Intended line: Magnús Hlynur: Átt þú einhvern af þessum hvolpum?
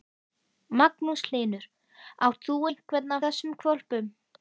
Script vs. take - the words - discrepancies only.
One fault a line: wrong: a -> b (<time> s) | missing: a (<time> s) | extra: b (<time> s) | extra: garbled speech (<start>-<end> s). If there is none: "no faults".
missing: af (3.2 s)